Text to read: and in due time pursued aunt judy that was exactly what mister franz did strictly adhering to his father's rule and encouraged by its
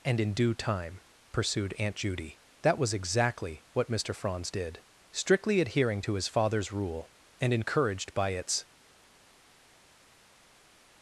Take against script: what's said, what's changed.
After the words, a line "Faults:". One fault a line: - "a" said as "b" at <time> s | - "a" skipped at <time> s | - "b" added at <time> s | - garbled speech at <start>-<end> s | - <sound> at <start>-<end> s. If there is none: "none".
and in due time pursued aunt judy that was exactly what mister franz did strictly adhering to his father's rule and encouraged by its
Faults:
none